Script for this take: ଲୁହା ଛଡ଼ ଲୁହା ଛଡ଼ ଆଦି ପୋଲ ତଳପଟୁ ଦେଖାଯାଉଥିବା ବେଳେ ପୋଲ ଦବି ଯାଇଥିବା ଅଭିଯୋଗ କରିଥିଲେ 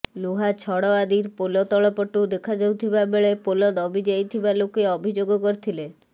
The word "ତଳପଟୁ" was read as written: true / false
true